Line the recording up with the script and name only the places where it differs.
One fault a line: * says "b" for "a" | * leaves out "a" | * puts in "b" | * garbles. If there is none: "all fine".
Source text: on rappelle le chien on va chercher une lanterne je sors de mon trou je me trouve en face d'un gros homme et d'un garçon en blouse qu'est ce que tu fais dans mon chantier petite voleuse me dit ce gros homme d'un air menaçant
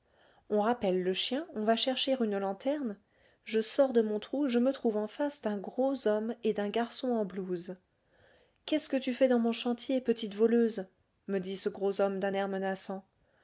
all fine